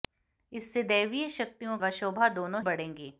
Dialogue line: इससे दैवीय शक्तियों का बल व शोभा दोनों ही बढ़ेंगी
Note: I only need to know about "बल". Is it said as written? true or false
false